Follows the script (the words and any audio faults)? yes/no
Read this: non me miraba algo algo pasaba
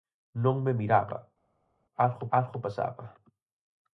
yes